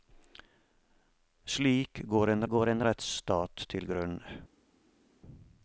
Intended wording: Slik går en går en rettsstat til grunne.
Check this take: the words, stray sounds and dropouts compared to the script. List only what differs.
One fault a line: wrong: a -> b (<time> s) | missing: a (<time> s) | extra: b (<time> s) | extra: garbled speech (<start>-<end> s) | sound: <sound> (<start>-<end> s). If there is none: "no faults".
no faults